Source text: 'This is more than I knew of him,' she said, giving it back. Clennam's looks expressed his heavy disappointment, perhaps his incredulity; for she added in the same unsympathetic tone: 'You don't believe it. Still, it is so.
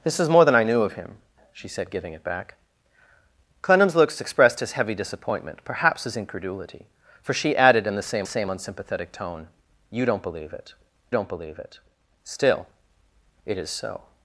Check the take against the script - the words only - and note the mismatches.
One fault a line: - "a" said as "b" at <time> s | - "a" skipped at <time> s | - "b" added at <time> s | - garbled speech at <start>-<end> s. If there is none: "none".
- "same" added at 8.2 s
- "don't believe it" added at 11.1 s